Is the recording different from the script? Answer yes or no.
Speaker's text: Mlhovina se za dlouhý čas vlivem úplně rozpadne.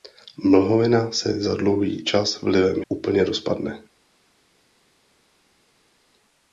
no